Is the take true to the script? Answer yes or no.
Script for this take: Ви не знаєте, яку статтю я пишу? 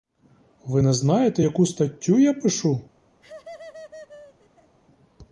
yes